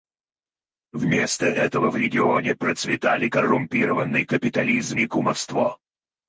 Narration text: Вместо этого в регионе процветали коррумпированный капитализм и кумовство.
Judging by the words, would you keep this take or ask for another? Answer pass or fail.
pass